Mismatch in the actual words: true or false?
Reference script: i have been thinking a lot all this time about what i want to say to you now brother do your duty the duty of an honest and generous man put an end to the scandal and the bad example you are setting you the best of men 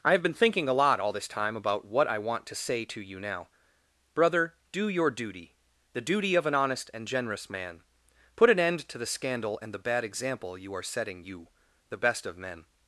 false